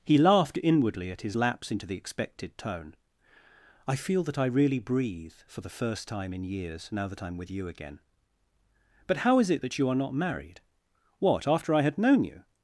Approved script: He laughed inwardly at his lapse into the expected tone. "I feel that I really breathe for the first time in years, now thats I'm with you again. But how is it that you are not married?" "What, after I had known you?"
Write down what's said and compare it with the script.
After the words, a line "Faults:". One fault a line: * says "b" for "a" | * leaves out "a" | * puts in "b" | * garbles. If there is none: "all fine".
He laughed inwardly at his lapse into the expected tone. "I feel that I really breathe for the first time in years, now that I'm with you again. But how is it that you are not married?" "What, after I had known you?"
Faults:
* says "that" for "thats"